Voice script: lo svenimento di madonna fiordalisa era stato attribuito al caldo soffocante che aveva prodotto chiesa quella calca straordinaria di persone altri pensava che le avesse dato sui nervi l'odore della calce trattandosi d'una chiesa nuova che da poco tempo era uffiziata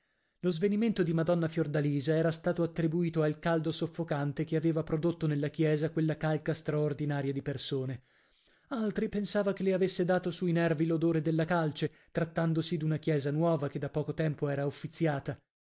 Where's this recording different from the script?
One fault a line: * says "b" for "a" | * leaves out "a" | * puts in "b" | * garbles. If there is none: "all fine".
* puts in "nella"